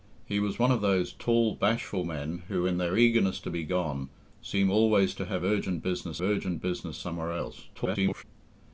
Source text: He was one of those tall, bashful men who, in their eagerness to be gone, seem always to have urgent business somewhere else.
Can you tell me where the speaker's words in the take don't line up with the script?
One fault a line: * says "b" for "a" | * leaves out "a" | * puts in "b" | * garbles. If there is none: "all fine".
* puts in "urgent business"
* garbles